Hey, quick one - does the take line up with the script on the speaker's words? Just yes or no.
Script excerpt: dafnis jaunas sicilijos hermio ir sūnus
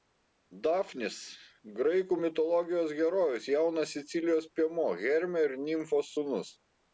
no